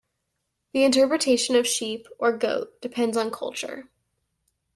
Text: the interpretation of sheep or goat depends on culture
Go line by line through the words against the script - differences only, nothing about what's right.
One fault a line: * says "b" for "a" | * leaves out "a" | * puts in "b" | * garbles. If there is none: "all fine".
all fine